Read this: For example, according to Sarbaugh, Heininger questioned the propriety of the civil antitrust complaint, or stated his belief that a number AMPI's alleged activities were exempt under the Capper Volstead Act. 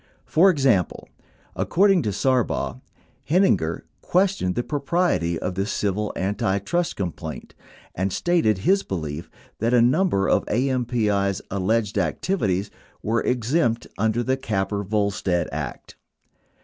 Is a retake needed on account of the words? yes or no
yes